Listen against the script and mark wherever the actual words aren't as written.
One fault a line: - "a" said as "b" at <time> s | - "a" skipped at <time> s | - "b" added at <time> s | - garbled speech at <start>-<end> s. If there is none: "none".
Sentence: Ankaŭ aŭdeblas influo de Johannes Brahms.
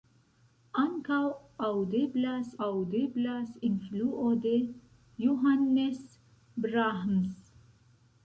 - "aŭdeblas" added at 2.7 s